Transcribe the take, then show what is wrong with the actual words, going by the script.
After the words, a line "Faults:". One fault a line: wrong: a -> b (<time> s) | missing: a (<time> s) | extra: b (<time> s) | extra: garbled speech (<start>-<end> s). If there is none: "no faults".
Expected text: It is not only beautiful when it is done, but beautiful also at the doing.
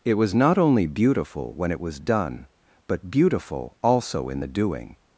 It was not only beautiful when it was done, but beautiful also in the doing.
Faults:
wrong: is -> was (0.1 s)
wrong: is -> was (1.8 s)
wrong: at -> in (4.3 s)